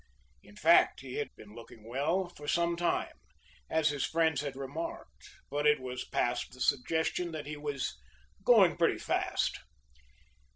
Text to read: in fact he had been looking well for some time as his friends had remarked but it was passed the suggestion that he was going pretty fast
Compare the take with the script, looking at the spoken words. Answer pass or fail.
pass